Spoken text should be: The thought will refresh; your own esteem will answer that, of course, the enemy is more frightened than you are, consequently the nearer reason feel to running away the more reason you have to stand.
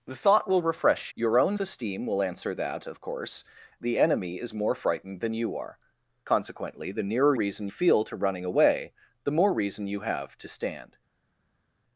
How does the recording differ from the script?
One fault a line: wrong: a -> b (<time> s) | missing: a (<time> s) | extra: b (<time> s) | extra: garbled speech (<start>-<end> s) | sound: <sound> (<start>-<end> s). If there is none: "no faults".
no faults